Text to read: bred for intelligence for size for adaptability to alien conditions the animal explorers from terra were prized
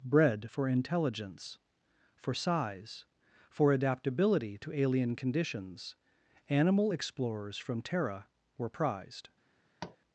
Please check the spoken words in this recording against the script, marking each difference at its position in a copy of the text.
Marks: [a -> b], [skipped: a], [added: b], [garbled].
bred for intelligence for size for adaptability to alien conditions [skipped: the] animal explorers from terra were prized